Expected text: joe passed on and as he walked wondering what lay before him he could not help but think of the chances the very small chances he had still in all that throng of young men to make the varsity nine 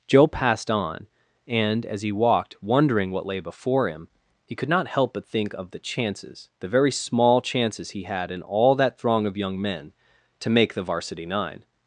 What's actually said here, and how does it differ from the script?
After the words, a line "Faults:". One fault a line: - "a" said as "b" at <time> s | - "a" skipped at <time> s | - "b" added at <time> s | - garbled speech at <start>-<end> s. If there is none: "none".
joe passed on and as he walked wondering what lay before him he could not help but think of the chances the very small chances he had in all that throng of young men to make the varsity nine
Faults:
- "still" skipped at 8.3 s